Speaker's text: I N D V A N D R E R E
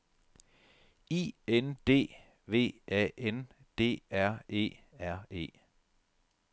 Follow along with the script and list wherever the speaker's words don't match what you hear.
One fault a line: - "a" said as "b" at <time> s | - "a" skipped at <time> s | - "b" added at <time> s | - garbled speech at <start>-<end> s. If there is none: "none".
none